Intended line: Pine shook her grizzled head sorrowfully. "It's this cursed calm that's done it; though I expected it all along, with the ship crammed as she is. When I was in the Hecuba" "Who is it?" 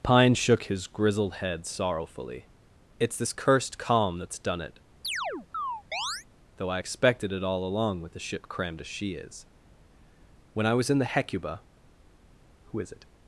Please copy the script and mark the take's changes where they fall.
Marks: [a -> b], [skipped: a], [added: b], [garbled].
Pine shook [her -> his] grizzled head sorrowfully. "It's this cursed calm that's done it; though I expected it all along, with the ship crammed as she is. When I was in the Hecuba" "Who is it?"